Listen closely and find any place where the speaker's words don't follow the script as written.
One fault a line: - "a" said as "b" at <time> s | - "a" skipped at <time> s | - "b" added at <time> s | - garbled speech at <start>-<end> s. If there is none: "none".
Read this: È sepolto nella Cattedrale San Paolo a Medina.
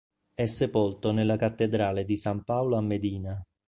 - "di" added at 2.1 s